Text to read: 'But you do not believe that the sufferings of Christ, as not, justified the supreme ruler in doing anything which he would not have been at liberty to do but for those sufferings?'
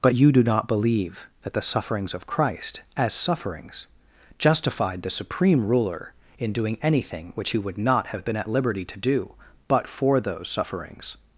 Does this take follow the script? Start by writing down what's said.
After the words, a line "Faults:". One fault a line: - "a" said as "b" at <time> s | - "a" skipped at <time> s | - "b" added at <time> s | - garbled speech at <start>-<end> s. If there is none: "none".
'But you do not believe that the sufferings of Christ, as sufferings, justified the supreme ruler in doing anything which he would not have been at liberty to do but for those sufferings?'
Faults:
- "not" said as "sufferings" at 3.1 s